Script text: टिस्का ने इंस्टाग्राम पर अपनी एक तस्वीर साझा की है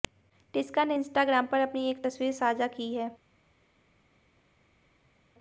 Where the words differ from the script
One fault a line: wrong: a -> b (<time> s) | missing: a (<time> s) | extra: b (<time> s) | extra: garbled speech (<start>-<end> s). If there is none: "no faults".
no faults